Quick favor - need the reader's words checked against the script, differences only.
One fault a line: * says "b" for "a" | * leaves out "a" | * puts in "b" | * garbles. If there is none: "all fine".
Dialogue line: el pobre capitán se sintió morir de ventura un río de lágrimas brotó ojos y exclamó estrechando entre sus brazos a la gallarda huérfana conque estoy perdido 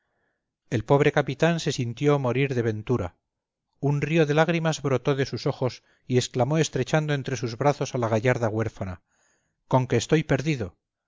* puts in "de sus"